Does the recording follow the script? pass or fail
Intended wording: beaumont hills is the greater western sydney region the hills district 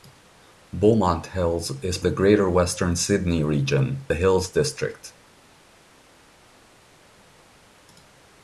pass